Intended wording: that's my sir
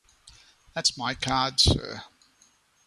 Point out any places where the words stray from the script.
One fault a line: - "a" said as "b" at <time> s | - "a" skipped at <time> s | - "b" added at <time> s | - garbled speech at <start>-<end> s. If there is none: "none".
- "card" added at 1.1 s